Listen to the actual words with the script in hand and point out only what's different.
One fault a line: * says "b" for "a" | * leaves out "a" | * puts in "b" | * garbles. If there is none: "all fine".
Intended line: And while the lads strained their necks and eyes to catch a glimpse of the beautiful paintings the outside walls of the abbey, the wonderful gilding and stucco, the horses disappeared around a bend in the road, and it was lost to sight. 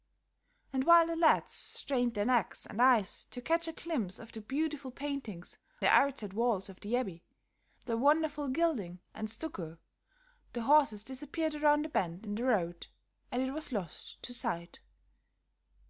all fine